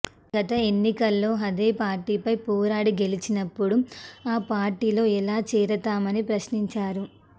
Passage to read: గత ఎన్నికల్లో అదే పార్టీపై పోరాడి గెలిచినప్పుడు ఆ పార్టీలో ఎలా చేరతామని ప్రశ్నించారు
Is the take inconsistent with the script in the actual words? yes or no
no